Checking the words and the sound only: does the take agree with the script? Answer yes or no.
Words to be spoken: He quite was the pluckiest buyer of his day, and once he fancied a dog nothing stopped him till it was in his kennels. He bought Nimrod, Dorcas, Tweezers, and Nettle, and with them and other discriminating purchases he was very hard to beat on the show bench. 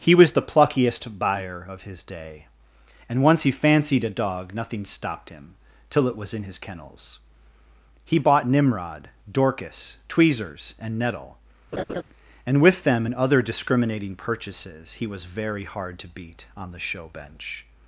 no